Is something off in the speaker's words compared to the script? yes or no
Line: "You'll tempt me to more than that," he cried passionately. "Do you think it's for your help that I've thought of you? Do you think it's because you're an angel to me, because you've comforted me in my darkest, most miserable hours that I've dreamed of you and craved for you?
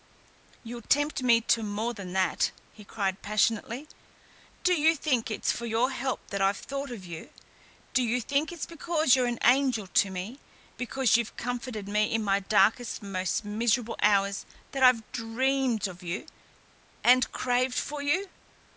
no